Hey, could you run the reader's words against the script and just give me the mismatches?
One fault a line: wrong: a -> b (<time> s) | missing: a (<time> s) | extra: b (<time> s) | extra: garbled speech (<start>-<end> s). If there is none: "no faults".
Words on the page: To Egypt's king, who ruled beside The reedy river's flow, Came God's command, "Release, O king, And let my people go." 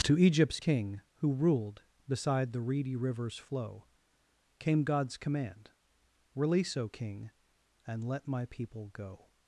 no faults